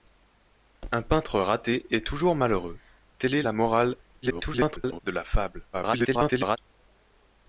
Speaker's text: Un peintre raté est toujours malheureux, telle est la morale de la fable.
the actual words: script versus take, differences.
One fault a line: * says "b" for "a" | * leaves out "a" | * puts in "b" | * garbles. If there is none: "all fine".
* garbles
* garbles